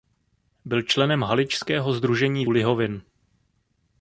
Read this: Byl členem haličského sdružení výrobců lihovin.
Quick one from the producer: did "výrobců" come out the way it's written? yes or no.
no